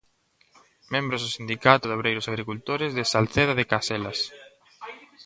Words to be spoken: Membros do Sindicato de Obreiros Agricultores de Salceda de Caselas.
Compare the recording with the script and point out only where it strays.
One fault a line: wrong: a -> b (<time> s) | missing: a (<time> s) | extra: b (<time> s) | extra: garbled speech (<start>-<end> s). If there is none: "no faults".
no faults